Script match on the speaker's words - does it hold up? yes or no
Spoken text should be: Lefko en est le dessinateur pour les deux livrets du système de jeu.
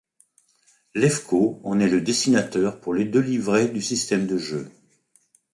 yes